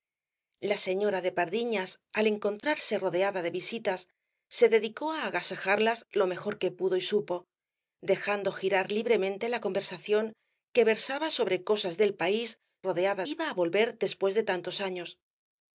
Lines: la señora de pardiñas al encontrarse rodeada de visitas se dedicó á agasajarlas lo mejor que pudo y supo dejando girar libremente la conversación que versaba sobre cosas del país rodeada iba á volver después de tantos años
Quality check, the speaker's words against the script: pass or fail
pass